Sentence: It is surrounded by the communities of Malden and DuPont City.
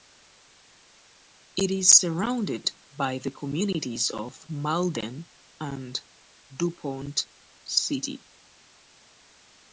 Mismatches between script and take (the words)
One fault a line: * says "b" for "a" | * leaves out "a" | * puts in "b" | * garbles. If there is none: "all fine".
all fine